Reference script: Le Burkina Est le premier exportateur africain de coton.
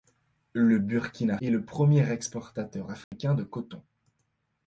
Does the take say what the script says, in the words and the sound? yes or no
no